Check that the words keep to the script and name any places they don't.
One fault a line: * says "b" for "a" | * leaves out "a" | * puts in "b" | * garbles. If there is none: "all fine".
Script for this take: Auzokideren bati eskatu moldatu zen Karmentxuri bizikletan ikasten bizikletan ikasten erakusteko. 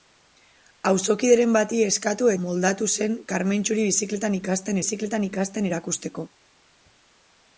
all fine